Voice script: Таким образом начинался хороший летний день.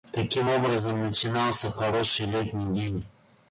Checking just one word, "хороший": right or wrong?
right